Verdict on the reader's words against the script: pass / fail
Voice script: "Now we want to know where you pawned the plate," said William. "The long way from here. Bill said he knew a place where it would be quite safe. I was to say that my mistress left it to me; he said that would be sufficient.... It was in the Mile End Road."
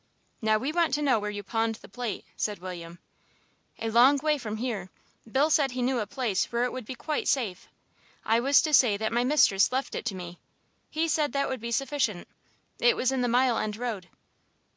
fail